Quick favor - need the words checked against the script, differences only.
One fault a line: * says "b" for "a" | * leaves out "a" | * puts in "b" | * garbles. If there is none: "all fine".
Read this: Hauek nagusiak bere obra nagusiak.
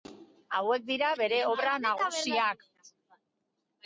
* says "dira" for "nagusiak"